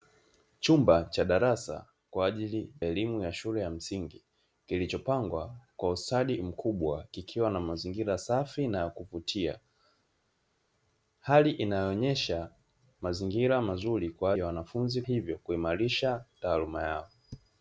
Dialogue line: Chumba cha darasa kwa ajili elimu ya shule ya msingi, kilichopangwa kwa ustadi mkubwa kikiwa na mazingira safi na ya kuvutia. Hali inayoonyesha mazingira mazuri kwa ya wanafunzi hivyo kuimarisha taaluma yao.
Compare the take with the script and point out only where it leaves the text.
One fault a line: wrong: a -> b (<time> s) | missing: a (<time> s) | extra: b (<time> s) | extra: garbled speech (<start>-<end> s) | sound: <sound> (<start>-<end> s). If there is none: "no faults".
no faults